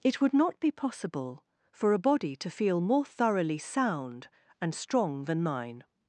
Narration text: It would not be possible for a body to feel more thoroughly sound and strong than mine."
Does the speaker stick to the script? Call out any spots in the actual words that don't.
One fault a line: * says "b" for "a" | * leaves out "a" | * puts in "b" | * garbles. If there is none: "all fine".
all fine